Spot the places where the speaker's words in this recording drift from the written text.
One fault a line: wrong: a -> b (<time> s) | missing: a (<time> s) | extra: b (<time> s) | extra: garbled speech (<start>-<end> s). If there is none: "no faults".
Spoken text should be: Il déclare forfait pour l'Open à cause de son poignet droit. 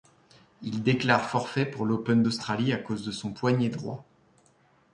extra: d'Australie (2.2 s)